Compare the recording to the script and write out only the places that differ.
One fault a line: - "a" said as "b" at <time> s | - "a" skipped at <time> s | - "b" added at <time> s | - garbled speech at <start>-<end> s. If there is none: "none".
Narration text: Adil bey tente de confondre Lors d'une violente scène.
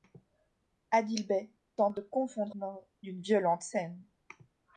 none